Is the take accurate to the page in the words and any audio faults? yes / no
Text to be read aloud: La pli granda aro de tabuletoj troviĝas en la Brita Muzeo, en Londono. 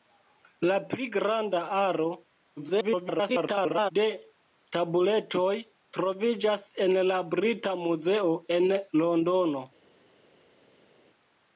no